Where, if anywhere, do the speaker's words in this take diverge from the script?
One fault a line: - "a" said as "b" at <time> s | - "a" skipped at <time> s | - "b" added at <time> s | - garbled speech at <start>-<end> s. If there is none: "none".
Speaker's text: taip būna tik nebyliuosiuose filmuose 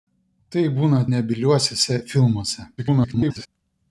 - "tik" skipped at 1.0 s
- garbled speech at 2.8-3.5 s